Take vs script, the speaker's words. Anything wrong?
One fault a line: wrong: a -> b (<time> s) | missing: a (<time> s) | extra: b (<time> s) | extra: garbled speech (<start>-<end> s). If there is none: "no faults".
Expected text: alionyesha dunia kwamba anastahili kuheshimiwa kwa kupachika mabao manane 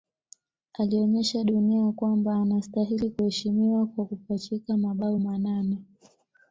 no faults